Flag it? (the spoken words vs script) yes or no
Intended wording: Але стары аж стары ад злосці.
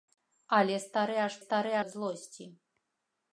no